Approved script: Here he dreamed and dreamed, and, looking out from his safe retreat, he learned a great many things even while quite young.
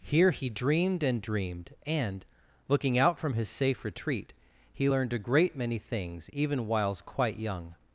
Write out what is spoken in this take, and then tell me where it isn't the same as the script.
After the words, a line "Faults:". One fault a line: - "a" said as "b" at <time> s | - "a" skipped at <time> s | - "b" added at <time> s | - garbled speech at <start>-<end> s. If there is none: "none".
Here he dreamed and dreamed, and, looking out from his safe retreat, he learned a great many things even whiles quite young.
Faults:
- "while" said as "whiles" at 6.7 s